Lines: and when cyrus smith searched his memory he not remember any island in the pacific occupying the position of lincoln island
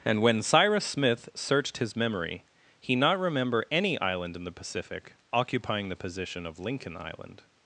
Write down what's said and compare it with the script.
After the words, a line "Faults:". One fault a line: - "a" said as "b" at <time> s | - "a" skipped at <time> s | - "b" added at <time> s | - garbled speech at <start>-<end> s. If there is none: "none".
and when cyrus smith searched his memory he not remember any island in the pacific occupying the position of lincoln island
Faults:
none